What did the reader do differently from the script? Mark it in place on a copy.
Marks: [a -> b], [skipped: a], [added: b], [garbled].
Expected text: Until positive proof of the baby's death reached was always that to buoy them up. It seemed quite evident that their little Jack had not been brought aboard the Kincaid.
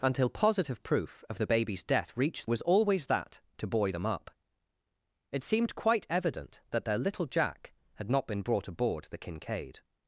Until positive proof of the baby's death reached was always that to buoy them up. It seemed quite evident that their little Jack had not been brought aboard the Kincaid.